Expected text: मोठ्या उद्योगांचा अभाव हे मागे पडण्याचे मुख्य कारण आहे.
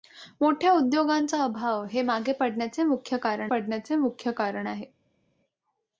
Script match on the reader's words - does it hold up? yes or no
no